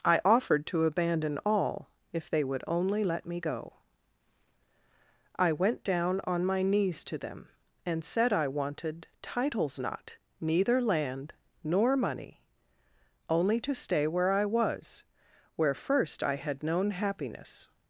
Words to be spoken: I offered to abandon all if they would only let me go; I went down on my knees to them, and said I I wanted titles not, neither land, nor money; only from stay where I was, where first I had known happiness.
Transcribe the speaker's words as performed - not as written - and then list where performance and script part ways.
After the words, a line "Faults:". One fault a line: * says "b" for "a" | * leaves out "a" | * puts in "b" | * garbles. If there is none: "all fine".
I offered to abandon all if they would only let me go; I went down on my knees to them, and said I wanted titles not, neither land, nor money; only to stay where I was, where first I had known happiness.
Faults:
* leaves out "I"
* says "to" for "from"